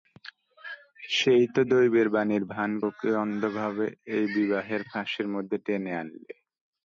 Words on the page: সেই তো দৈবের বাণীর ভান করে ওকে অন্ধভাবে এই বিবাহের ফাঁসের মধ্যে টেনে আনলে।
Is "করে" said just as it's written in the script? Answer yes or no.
no